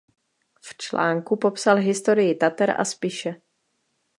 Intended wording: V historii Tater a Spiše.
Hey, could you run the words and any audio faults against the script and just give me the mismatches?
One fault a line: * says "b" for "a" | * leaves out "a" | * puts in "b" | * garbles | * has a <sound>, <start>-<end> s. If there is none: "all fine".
* puts in "článku popsal"